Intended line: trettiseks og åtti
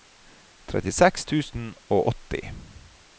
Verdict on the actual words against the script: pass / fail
fail